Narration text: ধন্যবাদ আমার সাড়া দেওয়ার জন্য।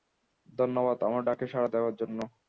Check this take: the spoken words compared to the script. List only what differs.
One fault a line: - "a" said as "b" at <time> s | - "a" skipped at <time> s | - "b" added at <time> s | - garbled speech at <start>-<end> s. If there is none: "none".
- "ডাকে" added at 1.2 s